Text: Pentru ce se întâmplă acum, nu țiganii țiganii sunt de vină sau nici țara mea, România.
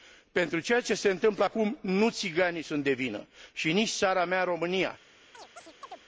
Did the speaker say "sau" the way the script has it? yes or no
no